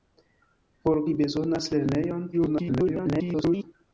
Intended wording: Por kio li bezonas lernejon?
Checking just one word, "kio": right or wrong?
wrong